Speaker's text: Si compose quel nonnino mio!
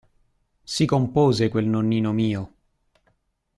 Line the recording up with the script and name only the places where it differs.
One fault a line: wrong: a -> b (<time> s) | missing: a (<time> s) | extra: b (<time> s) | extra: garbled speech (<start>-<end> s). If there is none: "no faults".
no faults